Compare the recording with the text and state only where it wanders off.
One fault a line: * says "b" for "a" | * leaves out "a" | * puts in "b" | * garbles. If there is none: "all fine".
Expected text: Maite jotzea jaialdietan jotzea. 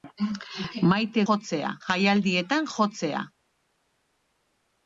all fine